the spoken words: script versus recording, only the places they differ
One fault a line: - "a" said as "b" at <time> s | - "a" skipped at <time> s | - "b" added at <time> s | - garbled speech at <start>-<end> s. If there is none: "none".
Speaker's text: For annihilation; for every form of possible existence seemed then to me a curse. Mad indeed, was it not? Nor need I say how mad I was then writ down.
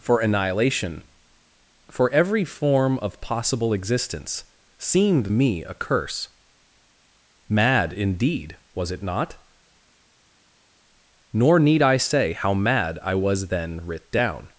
- "then to" skipped at 5.3 s